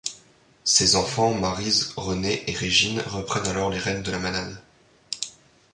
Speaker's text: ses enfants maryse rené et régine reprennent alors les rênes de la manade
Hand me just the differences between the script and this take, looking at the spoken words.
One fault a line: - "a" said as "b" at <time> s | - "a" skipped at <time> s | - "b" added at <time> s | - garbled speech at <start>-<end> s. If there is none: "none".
none